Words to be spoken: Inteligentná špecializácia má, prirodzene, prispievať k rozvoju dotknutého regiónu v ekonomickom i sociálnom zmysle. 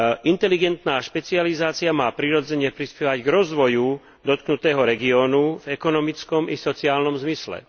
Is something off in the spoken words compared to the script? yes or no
no